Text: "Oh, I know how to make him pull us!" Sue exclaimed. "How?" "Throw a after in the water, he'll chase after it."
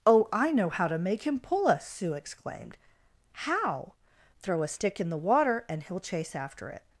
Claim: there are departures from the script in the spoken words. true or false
true